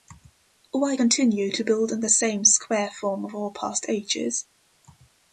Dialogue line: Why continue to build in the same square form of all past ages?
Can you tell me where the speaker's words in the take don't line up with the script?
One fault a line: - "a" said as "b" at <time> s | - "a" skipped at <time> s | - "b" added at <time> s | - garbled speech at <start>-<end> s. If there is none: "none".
none